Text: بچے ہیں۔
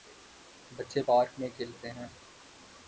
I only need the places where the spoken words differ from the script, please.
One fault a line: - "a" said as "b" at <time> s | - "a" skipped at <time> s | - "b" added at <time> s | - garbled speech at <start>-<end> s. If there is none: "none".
- "پارک میں کھیلتے" added at 1.0 s